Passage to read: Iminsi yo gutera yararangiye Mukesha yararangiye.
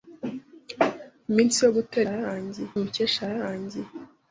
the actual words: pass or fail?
pass